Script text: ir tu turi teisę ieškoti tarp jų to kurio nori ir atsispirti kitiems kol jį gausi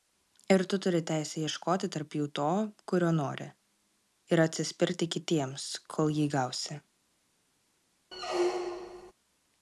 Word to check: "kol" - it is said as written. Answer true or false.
true